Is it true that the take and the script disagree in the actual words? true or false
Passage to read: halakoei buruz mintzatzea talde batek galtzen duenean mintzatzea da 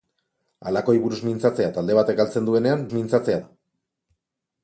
false